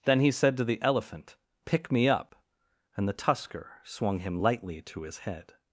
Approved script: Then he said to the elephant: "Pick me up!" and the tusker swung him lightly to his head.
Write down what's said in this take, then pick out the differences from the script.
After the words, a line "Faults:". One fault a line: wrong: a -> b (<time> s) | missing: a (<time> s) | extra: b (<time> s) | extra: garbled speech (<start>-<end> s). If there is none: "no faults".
Then he said to the elephant: "Pick me up!" and the tusker swung him lightly to his head.
Faults:
no faults